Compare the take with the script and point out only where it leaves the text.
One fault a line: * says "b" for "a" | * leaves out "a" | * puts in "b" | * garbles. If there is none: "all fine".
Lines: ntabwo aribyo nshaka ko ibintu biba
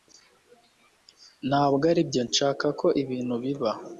all fine